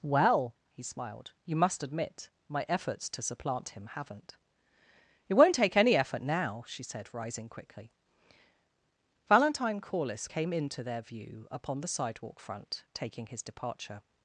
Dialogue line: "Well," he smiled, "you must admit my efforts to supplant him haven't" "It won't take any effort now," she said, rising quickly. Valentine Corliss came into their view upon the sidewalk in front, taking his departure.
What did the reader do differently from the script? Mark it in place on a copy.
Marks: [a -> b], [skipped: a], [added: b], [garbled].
"Well," he smiled, "you must admit my efforts to supplant him haven't" "It won't take any effort now," she said, rising quickly. Valentine Corliss came into their view upon the sidewalk [skipped: in] front, taking his departure.